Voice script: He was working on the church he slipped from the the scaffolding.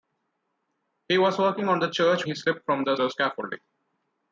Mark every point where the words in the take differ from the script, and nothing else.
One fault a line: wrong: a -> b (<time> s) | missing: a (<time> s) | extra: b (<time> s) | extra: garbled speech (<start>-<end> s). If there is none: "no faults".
no faults